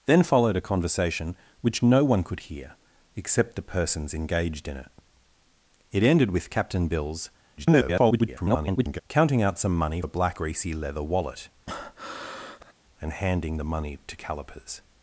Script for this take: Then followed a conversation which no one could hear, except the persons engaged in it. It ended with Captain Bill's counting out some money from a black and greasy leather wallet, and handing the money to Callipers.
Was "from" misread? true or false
true